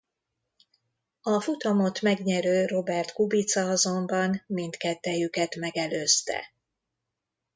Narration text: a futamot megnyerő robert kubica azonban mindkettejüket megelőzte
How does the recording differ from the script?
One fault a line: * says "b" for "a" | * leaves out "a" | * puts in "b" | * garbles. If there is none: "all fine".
all fine